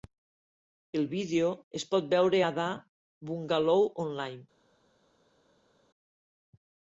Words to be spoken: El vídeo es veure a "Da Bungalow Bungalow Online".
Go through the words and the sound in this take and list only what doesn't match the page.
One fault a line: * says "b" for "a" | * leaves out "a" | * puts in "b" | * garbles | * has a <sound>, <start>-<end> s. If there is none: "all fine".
* puts in "pot"
* leaves out "Bungalow"